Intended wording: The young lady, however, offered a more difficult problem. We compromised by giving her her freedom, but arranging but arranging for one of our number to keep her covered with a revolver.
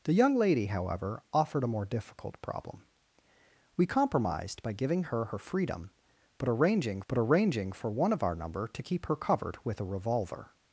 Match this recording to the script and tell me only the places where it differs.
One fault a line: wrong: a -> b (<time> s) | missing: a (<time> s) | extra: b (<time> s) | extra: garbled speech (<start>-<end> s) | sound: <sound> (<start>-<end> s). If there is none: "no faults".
no faults